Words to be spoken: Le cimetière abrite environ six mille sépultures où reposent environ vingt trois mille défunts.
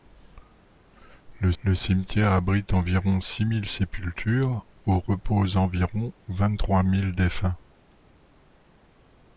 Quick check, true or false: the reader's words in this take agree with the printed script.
false